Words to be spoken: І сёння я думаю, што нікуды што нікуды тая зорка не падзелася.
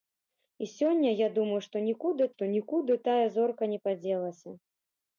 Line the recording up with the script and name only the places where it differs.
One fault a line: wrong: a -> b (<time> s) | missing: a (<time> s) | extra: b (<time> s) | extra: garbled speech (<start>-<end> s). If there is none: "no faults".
no faults